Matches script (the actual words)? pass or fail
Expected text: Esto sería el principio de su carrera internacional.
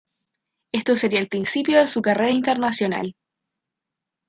pass